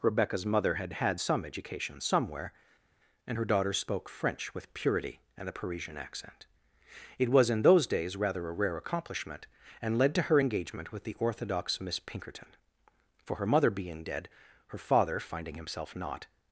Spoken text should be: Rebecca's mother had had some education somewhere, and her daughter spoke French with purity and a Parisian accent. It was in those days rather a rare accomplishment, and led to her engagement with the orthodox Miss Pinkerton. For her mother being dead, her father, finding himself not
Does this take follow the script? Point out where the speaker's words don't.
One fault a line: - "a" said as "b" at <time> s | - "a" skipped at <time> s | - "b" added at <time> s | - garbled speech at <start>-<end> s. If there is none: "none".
none